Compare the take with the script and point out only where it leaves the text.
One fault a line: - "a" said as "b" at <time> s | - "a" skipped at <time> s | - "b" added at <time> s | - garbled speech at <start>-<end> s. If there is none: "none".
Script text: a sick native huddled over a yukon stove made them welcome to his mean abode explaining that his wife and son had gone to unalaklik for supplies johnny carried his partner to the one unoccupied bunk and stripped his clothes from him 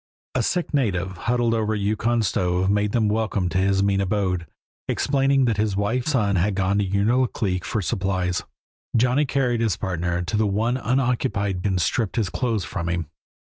- "and" skipped at 6.1 s
- "bunk" skipped at 11.6 s